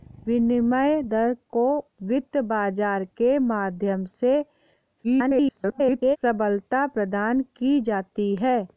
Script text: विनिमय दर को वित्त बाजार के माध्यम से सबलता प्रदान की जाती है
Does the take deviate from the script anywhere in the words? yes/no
yes